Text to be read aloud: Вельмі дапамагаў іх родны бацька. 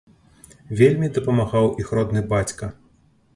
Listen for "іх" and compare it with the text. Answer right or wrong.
right